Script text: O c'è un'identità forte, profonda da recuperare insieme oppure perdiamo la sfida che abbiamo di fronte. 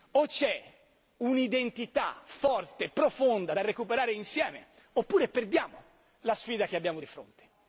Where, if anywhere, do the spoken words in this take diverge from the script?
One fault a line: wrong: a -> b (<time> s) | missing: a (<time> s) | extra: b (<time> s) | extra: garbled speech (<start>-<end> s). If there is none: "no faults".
no faults